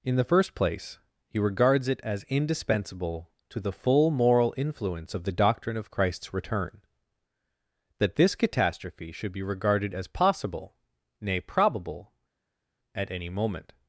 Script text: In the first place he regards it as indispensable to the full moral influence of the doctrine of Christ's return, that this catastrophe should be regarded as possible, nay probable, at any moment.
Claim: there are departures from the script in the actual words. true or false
false